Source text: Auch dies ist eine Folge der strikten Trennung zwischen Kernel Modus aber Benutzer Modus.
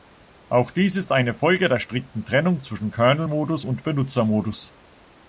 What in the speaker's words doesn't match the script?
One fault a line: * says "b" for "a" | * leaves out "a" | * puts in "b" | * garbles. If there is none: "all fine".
* says "und" for "aber"